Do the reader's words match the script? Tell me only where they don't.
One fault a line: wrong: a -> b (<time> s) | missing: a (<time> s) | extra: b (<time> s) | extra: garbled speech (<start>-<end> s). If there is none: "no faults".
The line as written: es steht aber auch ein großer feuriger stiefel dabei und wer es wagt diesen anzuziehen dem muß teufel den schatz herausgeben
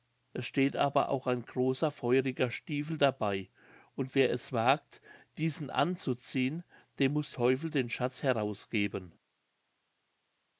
no faults